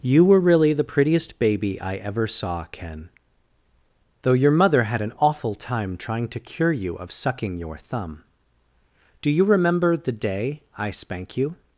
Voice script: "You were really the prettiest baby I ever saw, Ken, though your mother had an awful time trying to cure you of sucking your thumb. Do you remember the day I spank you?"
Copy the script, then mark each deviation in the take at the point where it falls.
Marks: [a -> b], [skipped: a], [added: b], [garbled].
"You were really the prettiest baby I ever saw, Ken, though your mother had an awful time trying to cure you of sucking your thumb. Do you remember the day I spank you?"